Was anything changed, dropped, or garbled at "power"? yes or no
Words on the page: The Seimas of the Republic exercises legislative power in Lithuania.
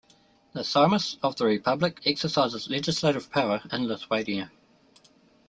no